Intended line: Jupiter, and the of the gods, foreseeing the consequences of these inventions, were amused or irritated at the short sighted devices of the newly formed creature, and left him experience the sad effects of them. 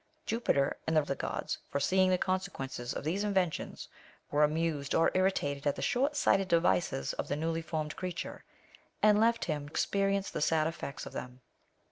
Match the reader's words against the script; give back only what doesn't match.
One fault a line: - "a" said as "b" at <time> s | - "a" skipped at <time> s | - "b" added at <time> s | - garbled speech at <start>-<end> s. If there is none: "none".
none